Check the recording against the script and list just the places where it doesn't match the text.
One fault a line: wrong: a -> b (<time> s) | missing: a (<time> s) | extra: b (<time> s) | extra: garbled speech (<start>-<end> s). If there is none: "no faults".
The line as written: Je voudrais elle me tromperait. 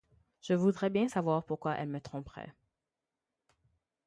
extra: bien savoir pourquoi (0.9 s)